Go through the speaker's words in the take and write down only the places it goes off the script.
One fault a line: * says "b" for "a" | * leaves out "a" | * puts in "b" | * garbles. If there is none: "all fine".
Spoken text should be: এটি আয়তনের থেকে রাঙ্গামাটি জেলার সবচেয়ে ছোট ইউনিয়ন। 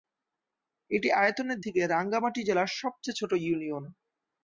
all fine